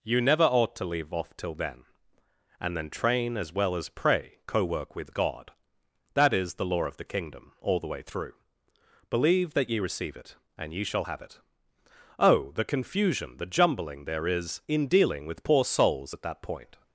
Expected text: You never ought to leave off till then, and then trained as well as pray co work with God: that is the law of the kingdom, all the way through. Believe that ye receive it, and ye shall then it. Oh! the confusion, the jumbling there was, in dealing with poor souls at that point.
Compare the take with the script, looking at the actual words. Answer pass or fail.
fail